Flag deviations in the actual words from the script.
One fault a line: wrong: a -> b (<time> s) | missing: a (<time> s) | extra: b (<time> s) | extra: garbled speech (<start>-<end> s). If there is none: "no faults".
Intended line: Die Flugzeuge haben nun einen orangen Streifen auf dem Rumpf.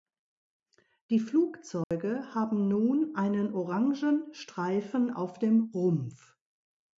no faults